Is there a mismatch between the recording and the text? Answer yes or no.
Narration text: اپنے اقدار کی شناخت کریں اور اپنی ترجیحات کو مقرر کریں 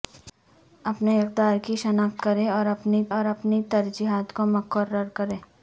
yes